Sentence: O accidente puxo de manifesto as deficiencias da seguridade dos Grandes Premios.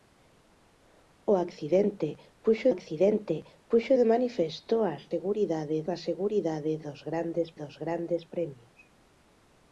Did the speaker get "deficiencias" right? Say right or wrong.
wrong